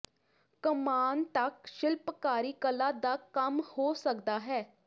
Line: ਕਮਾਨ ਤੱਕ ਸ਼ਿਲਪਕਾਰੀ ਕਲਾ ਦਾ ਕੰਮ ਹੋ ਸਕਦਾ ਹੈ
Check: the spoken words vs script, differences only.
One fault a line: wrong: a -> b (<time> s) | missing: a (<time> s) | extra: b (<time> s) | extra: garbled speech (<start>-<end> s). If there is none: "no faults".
no faults